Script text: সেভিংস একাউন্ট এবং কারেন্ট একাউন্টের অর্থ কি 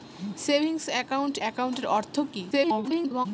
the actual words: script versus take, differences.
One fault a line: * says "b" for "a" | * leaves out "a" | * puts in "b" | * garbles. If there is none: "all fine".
* leaves out "এবং কারেন্ট"
* garbles